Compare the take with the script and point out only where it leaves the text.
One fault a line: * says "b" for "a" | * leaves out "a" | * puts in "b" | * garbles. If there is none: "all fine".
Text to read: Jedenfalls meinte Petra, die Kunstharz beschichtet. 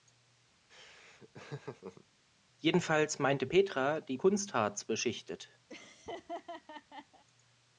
all fine